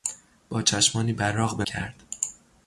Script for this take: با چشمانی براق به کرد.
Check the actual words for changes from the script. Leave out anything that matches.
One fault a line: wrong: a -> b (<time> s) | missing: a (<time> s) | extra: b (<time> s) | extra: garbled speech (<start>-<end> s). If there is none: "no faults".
no faults